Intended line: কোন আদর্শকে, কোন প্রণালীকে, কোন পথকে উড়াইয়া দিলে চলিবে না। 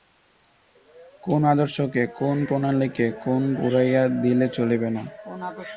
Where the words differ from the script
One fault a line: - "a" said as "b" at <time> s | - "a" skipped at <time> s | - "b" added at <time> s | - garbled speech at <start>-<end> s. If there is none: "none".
- "পথকে" skipped at 3.4 s